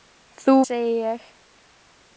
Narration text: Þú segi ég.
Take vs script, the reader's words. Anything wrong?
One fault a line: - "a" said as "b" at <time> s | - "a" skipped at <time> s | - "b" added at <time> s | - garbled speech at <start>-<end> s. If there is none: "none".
none